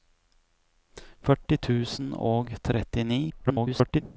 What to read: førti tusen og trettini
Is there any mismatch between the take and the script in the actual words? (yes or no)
yes